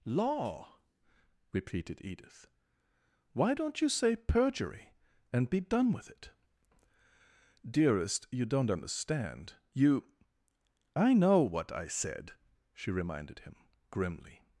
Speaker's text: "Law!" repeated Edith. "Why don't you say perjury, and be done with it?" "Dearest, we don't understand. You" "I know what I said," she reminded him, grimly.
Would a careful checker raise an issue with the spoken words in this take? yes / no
yes